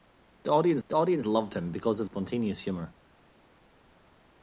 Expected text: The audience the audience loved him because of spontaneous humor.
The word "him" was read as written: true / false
true